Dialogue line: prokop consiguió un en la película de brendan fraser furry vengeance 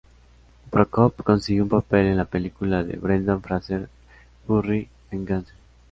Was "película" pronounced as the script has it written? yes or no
yes